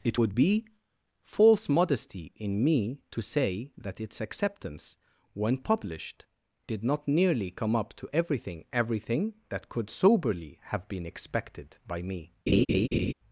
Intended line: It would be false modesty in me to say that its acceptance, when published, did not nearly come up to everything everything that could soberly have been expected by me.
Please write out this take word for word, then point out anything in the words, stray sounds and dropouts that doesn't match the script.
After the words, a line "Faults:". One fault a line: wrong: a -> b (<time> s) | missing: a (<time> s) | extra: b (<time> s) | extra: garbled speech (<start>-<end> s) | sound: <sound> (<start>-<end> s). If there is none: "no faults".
It would be false modesty in me to say that its acceptance, when published, did not nearly come up to everything everything that could soberly have been expected by me.
Faults:
sound: laugh (12.5-13.1 s)